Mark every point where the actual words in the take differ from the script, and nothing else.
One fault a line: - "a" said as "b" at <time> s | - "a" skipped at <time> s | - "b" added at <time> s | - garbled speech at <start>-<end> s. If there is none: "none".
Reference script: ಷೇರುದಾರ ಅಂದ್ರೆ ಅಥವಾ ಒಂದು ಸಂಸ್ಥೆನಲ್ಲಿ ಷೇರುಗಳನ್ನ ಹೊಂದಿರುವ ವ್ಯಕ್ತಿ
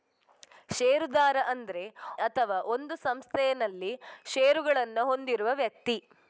none